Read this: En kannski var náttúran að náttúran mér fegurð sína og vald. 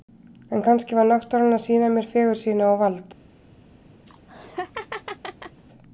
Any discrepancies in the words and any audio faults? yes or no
yes